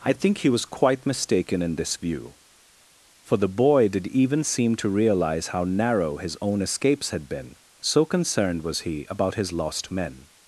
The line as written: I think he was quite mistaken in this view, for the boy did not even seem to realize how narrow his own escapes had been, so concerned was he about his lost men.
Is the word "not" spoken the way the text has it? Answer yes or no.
no